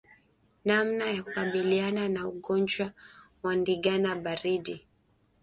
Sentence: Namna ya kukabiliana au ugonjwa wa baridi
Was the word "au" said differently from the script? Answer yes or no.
yes